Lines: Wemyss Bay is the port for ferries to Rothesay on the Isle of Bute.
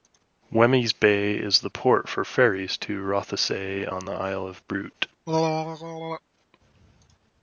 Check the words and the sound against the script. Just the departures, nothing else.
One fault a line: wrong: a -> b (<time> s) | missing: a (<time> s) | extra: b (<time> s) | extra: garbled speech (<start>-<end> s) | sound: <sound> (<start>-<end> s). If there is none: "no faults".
sound: throat clearing (5.3-6.2 s)